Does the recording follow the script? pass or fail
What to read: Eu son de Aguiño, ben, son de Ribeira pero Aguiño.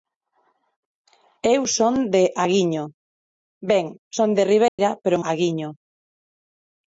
pass